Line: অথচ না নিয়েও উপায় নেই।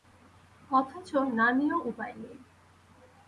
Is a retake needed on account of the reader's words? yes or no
no